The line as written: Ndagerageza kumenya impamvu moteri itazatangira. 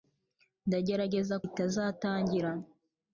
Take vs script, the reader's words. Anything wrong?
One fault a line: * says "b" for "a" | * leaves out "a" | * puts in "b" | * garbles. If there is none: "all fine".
* leaves out "kumenya impamvu moteri"